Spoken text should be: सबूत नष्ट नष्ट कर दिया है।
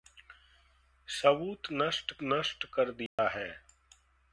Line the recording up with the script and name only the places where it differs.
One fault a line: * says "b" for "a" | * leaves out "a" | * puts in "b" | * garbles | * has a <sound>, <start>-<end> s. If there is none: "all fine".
* has a dropout, 3.1-3.2 s